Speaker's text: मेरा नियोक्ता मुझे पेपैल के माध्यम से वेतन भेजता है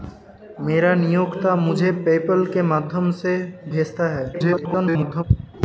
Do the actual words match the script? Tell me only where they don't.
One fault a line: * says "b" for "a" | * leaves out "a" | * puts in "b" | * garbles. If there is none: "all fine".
* leaves out "वेतन"
* garbles